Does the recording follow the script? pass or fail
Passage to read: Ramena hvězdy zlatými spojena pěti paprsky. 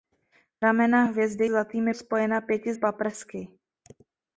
pass